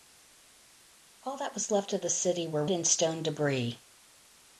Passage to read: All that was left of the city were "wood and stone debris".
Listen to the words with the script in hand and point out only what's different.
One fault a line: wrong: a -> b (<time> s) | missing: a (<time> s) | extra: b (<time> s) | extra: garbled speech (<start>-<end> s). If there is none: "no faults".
missing: wood (2.6 s)